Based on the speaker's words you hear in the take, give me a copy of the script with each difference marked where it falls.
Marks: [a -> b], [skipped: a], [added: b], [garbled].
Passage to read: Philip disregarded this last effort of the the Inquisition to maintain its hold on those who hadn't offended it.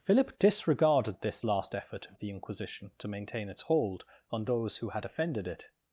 Philip disregarded this last effort of the [skipped: the] Inquisition to maintain its hold on those who [hadn't -> had] offended it.